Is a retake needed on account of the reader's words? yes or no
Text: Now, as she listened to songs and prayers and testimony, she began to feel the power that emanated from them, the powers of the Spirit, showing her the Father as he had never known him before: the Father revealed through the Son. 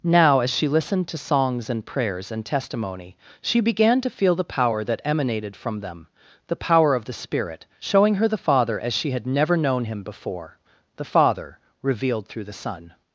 yes